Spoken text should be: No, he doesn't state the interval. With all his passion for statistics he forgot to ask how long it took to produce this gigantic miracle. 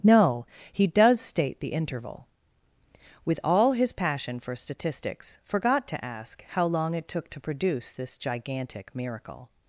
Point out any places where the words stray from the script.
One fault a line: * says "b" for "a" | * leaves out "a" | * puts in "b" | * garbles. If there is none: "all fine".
* says "does" for "doesn't"
* leaves out "he"